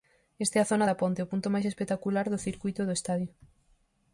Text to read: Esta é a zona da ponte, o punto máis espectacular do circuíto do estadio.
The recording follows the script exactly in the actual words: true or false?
true